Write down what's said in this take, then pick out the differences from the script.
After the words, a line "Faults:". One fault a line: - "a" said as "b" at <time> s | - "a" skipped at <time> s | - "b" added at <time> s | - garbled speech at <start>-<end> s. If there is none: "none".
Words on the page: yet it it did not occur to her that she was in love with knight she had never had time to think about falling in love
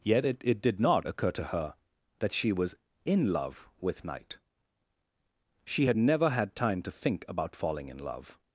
yet it it did not occur to her that she was in love with knight she had never had time to think about falling in love
Faults:
none